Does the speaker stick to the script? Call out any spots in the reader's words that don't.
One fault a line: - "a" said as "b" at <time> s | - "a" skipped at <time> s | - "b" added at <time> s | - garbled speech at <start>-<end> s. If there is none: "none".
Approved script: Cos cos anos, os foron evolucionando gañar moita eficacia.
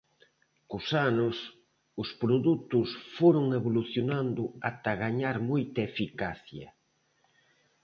- "cos" skipped at 0.9 s
- "produtos" added at 2.2 s
- "ata" added at 4.7 s